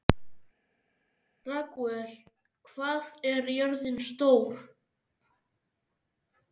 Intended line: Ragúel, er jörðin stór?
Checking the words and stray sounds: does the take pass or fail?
fail